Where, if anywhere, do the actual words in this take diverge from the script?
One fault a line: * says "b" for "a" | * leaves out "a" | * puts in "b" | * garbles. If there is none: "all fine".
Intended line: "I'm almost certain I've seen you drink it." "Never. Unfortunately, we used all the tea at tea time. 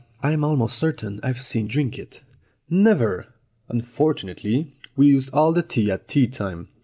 * leaves out "you"